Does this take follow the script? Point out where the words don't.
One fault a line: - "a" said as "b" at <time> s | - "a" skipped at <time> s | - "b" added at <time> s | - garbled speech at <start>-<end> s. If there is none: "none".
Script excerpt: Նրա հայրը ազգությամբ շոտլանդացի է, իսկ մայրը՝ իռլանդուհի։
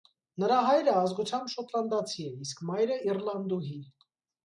none